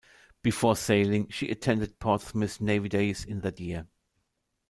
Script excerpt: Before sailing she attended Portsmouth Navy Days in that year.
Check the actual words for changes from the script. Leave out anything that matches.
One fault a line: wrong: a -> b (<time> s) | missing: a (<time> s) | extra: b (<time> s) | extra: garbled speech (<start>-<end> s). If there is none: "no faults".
no faults